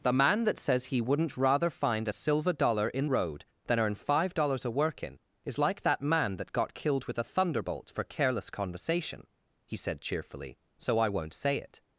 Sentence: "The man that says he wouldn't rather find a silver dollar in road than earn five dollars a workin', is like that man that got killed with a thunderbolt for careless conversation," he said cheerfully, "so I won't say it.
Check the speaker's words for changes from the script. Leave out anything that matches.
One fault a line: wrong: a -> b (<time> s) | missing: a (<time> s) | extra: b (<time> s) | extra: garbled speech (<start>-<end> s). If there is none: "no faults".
no faults